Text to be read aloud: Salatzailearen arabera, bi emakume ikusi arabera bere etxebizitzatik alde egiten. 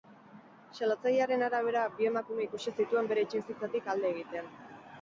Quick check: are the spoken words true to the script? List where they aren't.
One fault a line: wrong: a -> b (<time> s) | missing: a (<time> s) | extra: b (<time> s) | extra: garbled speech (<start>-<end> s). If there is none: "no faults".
wrong: arabera -> zituen (2.8 s)